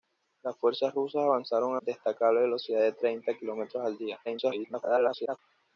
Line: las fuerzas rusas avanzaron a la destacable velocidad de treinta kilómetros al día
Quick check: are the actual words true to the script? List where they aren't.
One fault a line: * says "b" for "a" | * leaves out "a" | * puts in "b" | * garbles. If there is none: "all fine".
* leaves out "la"
* garbles